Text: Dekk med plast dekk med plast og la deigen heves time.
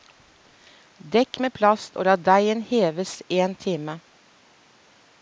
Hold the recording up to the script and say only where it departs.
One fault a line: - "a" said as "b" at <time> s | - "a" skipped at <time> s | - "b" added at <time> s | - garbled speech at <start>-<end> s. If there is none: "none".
- "dekk med plast" skipped at 2.0 s
- "en" added at 3.4 s